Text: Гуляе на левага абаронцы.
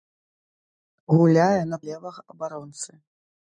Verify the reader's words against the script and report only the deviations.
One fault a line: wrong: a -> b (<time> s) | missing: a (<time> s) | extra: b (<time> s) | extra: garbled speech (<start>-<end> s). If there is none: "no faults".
no faults